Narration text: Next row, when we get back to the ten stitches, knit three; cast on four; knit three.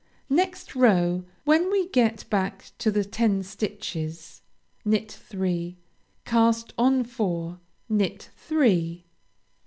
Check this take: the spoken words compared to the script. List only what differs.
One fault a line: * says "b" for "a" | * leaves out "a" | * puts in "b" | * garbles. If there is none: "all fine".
all fine